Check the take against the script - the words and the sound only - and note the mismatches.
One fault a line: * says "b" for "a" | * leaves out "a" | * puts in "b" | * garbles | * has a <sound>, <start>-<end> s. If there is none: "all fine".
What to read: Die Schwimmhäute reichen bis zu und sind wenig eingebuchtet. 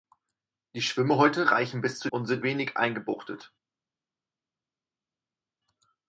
all fine